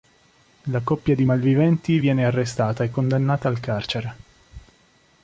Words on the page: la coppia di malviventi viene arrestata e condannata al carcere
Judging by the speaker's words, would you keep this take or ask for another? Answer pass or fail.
pass